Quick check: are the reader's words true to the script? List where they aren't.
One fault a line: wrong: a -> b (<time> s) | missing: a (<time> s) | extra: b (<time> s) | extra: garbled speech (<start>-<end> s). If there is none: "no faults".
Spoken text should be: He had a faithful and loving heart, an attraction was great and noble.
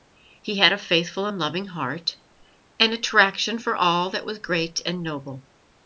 extra: for all that (3.6 s)